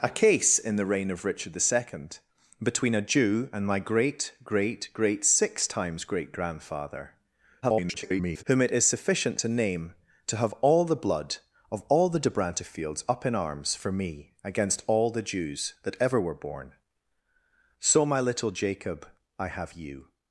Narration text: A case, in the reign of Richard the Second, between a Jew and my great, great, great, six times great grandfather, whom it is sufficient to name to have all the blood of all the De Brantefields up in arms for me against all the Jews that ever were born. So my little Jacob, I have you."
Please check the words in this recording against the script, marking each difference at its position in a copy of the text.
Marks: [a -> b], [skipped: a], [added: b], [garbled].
A case, in the reign of Richard the Second, between a Jew and my great, great, great, six times great grandfather, [garbled] whom it is sufficient to name to have all the blood of all the De Brantefields up in arms for me against all the Jews that ever were born. So my little Jacob, I have you."